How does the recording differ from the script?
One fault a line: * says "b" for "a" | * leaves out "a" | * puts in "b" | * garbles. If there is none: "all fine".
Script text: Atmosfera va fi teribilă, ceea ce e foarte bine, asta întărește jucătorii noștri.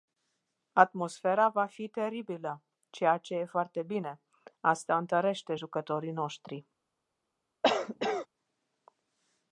all fine